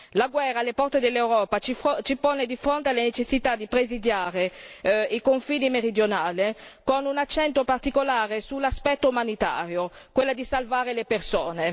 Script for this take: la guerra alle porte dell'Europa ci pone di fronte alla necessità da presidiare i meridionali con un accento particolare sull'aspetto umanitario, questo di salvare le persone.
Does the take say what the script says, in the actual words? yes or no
no